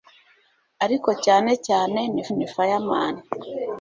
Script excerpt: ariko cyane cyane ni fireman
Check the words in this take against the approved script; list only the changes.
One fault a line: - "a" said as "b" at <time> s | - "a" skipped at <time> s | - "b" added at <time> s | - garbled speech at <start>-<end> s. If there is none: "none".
- "ni" added at 2.4 s